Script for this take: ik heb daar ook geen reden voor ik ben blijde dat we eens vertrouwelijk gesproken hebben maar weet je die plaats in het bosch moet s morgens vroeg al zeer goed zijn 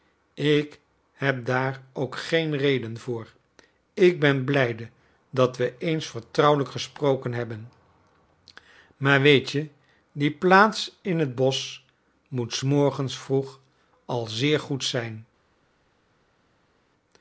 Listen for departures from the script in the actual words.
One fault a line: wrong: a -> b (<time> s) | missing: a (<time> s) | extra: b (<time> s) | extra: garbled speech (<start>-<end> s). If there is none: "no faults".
no faults